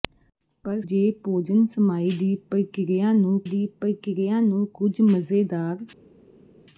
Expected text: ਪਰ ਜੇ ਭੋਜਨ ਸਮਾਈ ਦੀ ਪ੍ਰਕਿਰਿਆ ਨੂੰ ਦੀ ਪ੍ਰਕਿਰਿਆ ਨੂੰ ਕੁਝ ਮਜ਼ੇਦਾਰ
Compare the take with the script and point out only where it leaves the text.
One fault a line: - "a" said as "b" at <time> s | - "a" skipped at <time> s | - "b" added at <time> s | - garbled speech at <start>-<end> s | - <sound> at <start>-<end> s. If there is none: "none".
none